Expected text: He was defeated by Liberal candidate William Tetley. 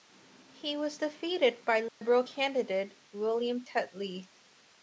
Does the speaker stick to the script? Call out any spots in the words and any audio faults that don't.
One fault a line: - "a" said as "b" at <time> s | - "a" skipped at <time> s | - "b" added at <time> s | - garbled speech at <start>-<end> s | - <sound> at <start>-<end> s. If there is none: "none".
- dropout at 1.9-2.0 s